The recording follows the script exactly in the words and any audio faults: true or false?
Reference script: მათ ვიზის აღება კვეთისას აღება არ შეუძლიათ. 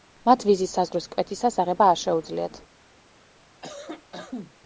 false